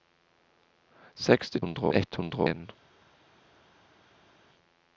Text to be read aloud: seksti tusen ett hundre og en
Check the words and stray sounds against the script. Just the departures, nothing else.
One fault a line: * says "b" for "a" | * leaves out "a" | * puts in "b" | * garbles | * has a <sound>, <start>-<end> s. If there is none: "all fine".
* says "hundre" for "tusen"
* leaves out "og"